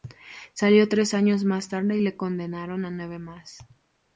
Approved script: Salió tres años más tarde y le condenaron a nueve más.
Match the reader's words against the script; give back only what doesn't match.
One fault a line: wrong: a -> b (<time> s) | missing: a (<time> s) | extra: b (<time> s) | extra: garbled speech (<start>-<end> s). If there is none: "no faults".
no faults